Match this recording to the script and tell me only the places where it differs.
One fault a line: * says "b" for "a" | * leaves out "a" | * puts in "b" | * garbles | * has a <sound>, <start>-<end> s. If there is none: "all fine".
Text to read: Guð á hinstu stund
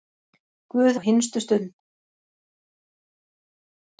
all fine